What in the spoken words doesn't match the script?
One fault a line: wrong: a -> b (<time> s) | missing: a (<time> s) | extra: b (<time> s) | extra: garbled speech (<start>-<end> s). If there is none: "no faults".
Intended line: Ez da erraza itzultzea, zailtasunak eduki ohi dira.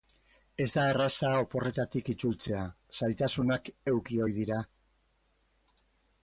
extra: oporretatik (1.4 s)